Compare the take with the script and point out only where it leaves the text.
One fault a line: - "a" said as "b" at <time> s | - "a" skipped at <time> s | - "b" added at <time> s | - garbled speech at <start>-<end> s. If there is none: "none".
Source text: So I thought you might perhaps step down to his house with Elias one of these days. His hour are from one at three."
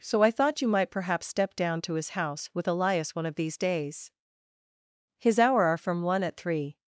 none